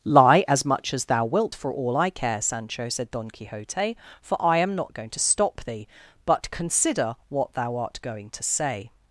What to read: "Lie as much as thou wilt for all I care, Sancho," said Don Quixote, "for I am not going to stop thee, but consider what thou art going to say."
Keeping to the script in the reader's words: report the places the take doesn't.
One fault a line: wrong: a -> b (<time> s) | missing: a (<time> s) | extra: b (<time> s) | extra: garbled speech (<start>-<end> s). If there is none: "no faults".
no faults